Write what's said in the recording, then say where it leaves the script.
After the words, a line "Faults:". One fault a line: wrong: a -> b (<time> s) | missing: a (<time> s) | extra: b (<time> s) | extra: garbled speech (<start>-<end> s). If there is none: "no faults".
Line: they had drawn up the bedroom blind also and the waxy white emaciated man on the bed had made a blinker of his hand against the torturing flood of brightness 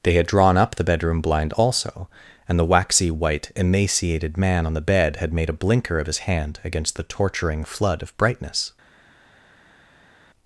they had drawn up the bedroom blind also and the waxy white emaciated man on the bed had made a blinker of his hand against the torturing flood of brightness
Faults:
no faults